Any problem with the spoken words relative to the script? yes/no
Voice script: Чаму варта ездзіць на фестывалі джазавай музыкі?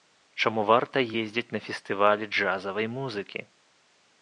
no